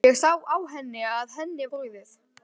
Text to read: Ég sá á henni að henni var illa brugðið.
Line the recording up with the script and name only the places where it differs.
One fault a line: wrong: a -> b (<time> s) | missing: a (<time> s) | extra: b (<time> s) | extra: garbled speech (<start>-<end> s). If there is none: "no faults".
missing: var illa (1.7 s)